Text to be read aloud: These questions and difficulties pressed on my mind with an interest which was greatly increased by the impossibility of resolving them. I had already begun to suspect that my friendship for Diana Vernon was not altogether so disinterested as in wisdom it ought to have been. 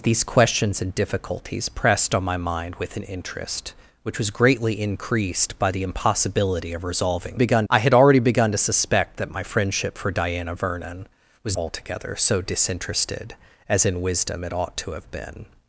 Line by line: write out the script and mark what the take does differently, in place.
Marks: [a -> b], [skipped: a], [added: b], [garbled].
These questions and difficulties pressed on my mind with an interest which was greatly increased by the impossibility of resolving [them. -> begun] I had already begun to suspect that my friendship for Diana Vernon was [skipped: not] altogether so disinterested as in wisdom it ought to have been.